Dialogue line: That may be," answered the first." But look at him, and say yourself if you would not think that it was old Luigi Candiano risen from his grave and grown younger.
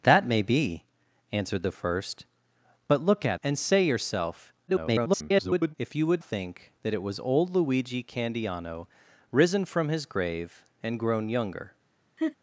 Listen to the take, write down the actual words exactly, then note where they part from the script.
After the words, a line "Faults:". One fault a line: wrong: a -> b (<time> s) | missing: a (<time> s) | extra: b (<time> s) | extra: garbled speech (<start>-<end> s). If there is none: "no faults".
That may be," answered the first." But look at and say yourself [garbled] if you would think that it was old Luigi Candiano risen from his grave and grown younger.
Faults:
missing: him (3.4 s)
extra: garbled speech (4.7-5.7 s)
missing: not (6.2 s)